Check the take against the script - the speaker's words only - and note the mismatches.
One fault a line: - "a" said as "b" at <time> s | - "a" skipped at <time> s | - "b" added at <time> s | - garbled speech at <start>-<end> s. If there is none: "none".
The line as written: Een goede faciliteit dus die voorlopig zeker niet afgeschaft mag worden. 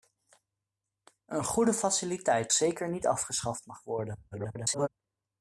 - "dus die voorlopig" skipped at 2.5 s
- garbled speech at 4.3-4.9 s